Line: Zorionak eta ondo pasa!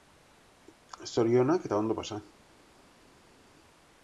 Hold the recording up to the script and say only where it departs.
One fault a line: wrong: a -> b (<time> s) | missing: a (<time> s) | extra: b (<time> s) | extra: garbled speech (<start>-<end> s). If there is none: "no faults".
no faults